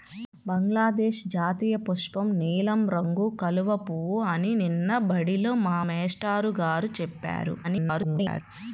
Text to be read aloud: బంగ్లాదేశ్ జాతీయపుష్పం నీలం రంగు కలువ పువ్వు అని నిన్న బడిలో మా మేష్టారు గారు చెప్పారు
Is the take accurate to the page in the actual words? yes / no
no